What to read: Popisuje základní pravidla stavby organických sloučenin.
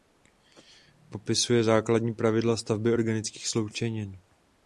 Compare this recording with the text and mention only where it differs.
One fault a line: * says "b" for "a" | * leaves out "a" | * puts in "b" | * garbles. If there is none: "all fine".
all fine